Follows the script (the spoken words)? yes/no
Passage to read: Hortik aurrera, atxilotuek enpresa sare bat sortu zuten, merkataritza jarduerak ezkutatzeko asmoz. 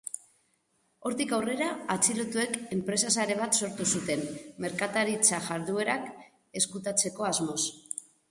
yes